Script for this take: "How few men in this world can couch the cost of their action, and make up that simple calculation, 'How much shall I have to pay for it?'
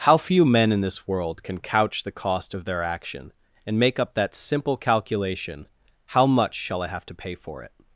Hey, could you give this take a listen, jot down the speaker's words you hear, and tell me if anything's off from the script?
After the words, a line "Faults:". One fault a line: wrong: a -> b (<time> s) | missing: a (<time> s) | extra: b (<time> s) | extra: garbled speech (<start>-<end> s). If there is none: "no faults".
"How few men in this world can couch the cost of their action, and make up that simple calculation, 'How much shall I have to pay for it?'
Faults:
no faults